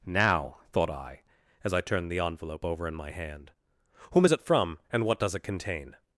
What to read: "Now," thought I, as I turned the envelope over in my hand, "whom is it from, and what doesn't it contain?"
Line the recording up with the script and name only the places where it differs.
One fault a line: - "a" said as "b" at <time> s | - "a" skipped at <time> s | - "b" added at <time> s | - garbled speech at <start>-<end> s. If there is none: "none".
- "doesn't" said as "does" at 5.2 s